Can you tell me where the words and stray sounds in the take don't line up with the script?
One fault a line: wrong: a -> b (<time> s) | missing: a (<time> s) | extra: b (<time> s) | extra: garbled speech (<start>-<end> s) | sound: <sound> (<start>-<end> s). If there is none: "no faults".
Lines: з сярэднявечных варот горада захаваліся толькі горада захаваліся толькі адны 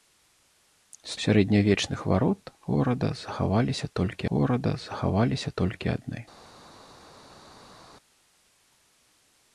no faults